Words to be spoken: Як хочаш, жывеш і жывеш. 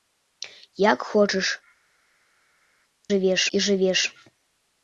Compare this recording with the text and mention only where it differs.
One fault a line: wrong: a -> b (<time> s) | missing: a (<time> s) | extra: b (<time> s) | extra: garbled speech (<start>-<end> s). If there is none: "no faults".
no faults